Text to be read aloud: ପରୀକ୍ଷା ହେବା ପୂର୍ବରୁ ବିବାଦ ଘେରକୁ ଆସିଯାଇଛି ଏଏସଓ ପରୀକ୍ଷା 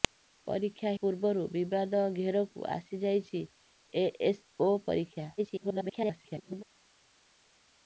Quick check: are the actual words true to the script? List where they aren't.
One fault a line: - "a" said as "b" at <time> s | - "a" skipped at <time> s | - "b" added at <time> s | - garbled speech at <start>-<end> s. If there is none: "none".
- "ହେବା" skipped at 0.9 s
- garbled speech at 5.4-6.6 s